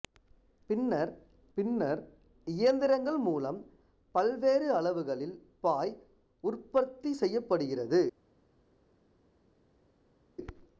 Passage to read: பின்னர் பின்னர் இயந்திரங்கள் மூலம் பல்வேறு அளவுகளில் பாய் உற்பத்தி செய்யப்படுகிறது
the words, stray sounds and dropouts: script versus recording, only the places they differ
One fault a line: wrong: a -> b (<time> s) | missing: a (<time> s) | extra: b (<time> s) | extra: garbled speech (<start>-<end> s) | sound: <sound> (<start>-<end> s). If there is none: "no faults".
no faults